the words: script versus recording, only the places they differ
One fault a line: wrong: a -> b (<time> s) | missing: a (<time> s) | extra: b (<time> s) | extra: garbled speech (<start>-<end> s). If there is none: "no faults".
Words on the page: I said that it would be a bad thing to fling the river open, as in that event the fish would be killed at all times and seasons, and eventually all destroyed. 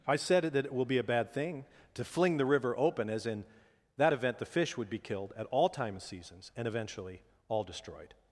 wrong: would -> will (0.7 s)
wrong: times -> time (5.7 s)